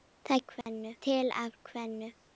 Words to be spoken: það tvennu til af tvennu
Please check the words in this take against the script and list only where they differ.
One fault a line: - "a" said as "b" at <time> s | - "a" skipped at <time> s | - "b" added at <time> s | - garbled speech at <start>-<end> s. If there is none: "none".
none